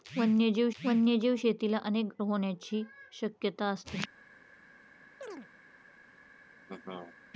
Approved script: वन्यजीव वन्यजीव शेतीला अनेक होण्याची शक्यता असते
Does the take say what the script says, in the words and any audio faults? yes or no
no